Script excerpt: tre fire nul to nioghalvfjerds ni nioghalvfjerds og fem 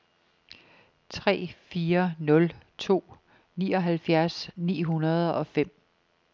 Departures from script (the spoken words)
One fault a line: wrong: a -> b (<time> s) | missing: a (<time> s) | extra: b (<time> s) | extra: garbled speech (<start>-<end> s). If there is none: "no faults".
wrong: nioghalvfjerds -> hundrede (4.8 s)